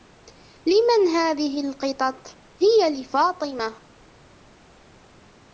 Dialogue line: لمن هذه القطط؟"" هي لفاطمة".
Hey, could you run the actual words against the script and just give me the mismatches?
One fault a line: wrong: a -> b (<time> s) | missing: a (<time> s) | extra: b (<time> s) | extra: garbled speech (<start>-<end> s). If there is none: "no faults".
no faults